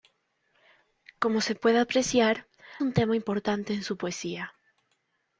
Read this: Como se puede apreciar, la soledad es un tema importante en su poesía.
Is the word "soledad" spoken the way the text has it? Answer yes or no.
no